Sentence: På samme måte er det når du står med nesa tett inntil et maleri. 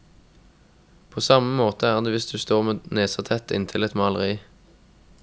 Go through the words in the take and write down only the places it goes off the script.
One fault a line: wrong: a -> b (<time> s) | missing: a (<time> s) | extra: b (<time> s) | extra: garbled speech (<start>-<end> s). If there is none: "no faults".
wrong: når -> hvis (2.1 s)